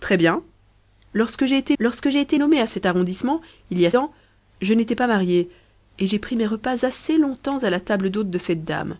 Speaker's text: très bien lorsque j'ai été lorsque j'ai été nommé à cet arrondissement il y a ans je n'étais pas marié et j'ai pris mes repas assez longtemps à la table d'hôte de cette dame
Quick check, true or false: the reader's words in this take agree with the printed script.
true